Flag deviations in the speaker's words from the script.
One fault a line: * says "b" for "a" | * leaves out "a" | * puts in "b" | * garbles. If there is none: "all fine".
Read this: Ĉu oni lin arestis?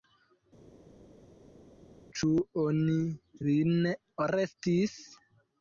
all fine